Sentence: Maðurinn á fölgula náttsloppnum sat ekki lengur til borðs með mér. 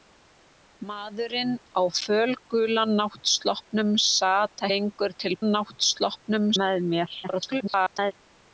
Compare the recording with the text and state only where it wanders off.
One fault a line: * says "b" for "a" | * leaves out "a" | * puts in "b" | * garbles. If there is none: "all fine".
* leaves out "ekki"
* says "náttsloppnum" for "borðs"
* garbles